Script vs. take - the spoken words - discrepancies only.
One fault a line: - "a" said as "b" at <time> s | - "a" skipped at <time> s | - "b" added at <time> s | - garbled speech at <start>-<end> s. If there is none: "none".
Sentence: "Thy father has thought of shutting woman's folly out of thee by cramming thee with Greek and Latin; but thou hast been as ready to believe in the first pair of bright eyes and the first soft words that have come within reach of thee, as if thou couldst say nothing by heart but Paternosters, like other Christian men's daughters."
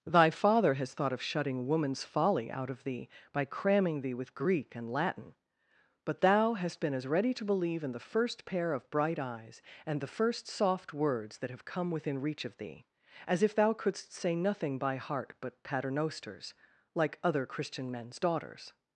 none